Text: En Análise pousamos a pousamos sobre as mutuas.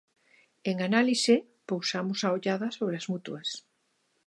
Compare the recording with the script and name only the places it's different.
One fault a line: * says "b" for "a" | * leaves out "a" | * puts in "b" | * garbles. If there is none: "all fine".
* says "ollada" for "pousamos"